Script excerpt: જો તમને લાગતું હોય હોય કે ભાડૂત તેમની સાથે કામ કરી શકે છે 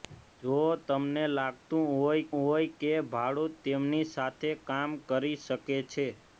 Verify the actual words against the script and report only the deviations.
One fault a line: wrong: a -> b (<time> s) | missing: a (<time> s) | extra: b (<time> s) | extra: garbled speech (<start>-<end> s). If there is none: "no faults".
no faults